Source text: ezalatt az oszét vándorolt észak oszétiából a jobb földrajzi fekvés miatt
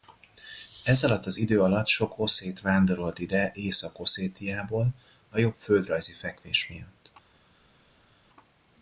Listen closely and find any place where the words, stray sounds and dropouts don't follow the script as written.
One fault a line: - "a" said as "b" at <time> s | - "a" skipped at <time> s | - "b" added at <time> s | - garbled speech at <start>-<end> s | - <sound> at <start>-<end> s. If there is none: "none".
- "idő alatt sok" added at 1.4 s
- "ide" added at 3.2 s